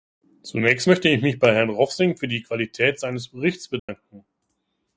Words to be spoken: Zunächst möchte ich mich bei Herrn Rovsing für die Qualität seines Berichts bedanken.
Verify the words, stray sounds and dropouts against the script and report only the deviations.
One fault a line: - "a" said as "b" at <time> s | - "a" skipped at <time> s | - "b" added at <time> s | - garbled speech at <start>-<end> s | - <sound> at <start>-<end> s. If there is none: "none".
- dropout at 3.8-3.9 s